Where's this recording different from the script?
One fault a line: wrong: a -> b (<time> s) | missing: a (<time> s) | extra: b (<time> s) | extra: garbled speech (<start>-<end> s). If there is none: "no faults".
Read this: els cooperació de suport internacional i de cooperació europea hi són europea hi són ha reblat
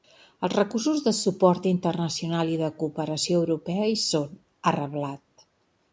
wrong: cooperació -> recursos (0.5 s)
missing: europea hi són (4.4 s)